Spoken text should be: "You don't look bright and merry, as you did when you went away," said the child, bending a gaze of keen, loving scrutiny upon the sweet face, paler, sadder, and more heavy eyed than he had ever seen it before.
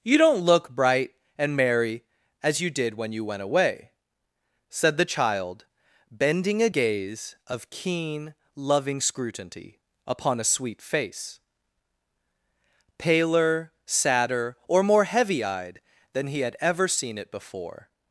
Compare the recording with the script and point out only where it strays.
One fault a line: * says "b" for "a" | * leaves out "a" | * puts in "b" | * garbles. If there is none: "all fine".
* says "a" for "the"
* says "or" for "and"